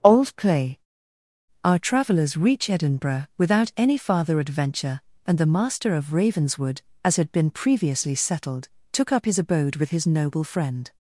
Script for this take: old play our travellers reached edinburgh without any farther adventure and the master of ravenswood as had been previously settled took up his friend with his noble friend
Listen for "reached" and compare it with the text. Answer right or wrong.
wrong